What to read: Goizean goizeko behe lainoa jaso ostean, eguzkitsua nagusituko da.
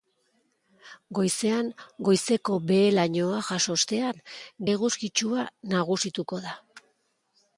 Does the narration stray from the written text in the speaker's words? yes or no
no